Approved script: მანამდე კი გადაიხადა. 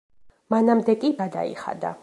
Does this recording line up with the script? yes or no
yes